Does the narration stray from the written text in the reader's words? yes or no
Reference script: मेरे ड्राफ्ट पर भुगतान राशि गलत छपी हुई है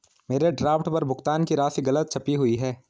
yes